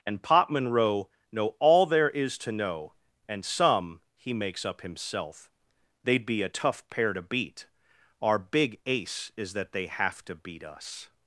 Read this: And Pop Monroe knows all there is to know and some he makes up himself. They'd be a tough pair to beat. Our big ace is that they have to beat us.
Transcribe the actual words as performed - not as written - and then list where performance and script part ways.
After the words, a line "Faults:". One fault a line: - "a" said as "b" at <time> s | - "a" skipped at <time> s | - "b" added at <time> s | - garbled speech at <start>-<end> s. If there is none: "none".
And Pop Monroe know all there is to know and some he makes up himself. They'd be a tough pair to beat. Our big ace is that they have to beat us.
Faults:
- "knows" said as "know" at 1.3 s